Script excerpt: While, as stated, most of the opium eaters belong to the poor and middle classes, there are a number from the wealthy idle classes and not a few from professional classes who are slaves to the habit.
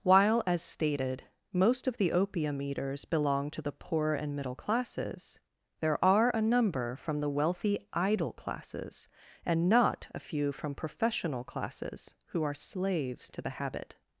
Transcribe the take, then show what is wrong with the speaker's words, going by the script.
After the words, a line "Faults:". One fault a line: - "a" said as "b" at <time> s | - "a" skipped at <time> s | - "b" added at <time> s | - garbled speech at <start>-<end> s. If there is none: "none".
While, as stated, most of the opium eaters belong to the poor and middle classes, there are a number from the wealthy idle classes and not a few from professional classes who are slaves to the habit.
Faults:
none